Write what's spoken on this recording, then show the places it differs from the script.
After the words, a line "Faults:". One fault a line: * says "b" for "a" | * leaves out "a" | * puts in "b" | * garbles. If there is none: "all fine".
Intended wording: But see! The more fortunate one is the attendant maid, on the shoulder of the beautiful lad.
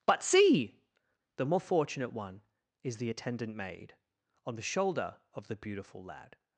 But see! The more fortunate one is the attendant maid, on the shoulder of the beautiful lad.
Faults:
all fine